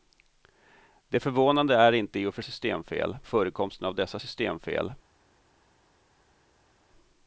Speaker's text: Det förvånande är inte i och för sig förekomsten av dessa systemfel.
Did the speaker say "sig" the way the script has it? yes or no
no